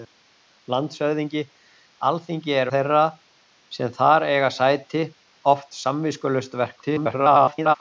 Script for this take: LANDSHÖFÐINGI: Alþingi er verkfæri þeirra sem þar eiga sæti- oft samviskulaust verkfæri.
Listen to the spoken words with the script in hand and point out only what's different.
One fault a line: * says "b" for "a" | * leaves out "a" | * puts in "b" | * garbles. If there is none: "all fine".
* leaves out "verkfæri"
* garbles